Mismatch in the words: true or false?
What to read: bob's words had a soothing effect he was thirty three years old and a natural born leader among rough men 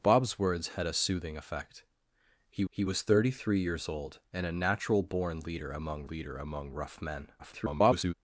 true